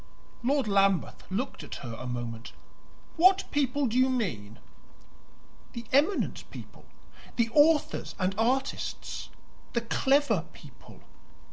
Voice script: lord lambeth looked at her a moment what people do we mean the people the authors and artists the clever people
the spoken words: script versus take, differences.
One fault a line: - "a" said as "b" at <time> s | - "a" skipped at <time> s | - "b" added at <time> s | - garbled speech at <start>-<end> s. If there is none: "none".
- "we" said as "you" at 4.0 s
- "eminent" added at 5.9 s